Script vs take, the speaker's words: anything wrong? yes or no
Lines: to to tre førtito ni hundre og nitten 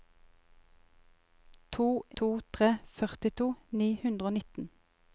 no